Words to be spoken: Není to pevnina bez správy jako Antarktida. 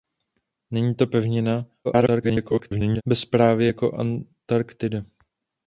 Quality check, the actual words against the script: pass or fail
fail